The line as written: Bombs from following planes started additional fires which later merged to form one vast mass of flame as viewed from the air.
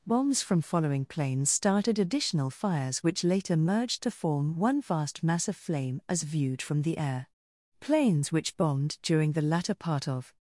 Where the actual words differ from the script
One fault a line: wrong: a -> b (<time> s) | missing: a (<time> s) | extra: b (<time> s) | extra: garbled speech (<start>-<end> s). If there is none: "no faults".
extra: Planes which bombed during the latter part of (7.8 s)